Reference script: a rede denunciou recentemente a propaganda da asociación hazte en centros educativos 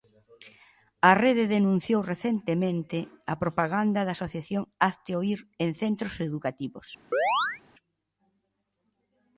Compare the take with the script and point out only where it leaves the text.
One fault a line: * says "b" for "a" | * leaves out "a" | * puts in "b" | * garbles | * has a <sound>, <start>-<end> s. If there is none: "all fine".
* puts in "oír"
* has a chirp, 7.1-7.6 s